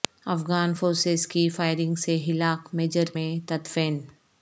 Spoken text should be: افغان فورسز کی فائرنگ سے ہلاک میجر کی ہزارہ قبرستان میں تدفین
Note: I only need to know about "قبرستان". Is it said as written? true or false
false